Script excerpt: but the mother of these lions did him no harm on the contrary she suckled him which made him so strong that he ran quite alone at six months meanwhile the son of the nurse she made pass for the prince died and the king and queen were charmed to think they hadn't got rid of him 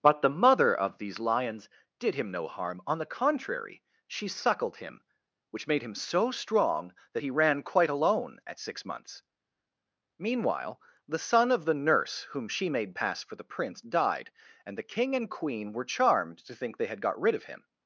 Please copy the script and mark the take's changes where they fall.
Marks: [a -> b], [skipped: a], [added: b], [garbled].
but the mother of these lions did him no harm on the contrary she suckled him which made him so strong that he ran quite alone at six months meanwhile the son of the nurse [added: whom] she made pass for the prince died and the king and queen were charmed to think they [hadn't -> had] got rid of him